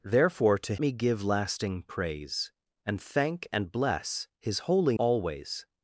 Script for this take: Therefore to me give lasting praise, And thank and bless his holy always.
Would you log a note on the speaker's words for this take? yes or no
no